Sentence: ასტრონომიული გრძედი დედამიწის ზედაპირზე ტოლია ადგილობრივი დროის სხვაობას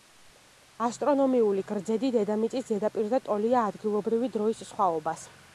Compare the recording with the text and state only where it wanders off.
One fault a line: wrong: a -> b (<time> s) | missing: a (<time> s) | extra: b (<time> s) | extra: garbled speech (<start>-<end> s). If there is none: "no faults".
no faults